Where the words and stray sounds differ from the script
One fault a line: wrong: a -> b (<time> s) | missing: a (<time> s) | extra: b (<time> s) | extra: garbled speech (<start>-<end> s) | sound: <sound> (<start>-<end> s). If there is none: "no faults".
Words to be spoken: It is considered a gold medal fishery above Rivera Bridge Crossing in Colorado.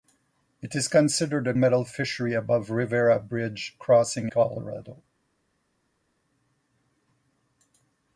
missing: gold (1.5 s)
missing: in (4.3 s)